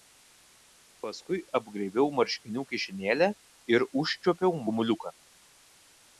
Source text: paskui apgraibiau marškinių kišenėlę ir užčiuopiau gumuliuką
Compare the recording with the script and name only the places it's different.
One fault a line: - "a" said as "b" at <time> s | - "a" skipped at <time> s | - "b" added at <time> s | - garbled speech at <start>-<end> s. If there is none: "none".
none